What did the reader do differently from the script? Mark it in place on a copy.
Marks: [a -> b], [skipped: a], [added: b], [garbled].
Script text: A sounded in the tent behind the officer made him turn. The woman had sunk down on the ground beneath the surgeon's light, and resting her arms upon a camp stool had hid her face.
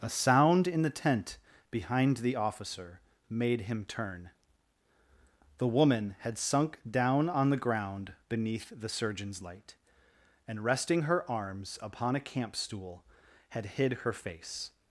A [sounded -> sound] in the tent behind the officer made him turn. The woman had sunk down on the ground beneath the surgeon's light, and resting her arms upon a camp stool had hid her face.